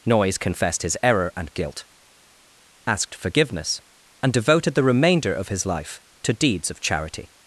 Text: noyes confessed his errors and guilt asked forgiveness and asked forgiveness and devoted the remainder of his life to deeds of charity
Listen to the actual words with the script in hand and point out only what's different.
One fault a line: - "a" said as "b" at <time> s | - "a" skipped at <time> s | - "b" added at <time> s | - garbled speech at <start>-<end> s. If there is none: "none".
- "errors" said as "error" at 1.0 s
- "asked forgiveness and" skipped at 4.3 s